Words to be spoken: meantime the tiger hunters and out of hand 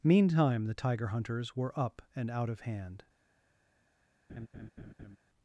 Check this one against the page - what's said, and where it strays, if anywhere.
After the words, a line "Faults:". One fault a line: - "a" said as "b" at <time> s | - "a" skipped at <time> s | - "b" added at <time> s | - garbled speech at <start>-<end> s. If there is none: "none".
meantime the tiger hunters were up and out of hand
Faults:
- "were up" added at 1.6 s